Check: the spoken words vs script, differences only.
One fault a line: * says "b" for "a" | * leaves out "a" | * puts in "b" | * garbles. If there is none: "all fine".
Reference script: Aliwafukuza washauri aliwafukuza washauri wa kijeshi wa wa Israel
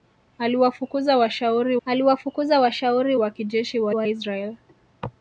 all fine